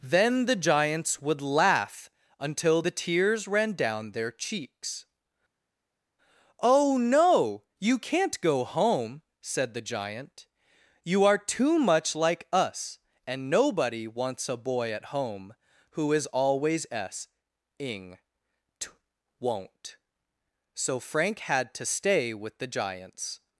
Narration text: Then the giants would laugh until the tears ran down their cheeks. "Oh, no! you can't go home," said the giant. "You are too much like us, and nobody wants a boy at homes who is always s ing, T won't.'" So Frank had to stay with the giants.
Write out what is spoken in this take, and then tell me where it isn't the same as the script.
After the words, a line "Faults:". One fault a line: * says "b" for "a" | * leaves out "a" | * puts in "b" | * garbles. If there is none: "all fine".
Then the giants would laugh until the tears ran down their cheeks. "Oh, no! you can't go home," said the giant. "You are too much like us, and nobody wants a boy at home who is always s ing, T won't.'" So Frank had to stay with the giants.
Faults:
* says "home" for "homes"